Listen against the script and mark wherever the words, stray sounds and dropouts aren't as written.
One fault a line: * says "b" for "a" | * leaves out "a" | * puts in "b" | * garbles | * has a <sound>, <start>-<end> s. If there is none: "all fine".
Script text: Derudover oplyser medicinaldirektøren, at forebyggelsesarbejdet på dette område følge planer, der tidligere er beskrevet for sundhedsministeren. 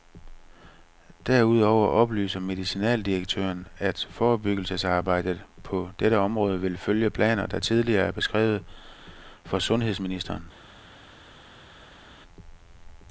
* puts in "vil"